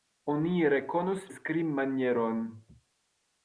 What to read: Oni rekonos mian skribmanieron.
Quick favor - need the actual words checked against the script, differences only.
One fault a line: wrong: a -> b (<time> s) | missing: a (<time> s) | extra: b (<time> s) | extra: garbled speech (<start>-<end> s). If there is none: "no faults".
missing: mian (1.3 s)